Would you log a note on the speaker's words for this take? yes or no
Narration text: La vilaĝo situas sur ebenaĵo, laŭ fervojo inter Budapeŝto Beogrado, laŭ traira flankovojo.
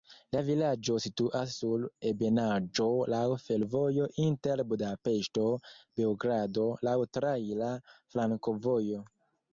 no